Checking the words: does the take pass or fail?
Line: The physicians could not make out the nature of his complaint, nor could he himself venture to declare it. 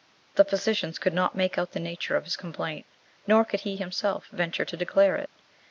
pass